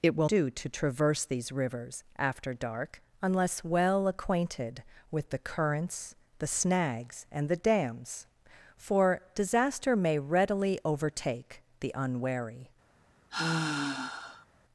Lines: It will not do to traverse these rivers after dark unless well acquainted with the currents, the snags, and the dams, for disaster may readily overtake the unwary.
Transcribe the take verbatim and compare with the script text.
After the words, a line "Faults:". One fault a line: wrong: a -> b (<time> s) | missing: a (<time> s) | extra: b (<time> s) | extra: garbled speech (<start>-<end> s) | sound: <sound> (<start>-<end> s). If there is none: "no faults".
It will do to traverse these rivers after dark unless well acquainted with the currents, the snags, and the dams, for disaster may readily overtake the unwary.
Faults:
missing: not (0.3 s)
sound: sigh (13.3-14.5 s)